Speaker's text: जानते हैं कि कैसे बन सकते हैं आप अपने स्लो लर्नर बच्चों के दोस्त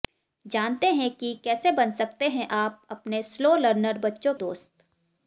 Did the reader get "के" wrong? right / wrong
wrong